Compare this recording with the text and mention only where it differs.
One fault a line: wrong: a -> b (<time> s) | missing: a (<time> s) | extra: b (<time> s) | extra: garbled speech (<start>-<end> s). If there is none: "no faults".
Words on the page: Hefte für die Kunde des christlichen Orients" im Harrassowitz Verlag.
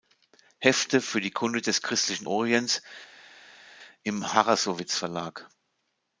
no faults